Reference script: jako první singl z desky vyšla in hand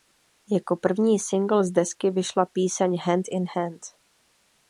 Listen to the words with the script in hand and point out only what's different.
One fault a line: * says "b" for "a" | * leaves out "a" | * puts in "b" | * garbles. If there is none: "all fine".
* puts in "píseň hand"